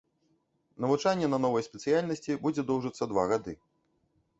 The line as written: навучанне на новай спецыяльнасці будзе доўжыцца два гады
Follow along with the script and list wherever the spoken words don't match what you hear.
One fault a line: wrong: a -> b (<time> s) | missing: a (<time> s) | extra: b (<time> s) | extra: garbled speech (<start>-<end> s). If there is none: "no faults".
no faults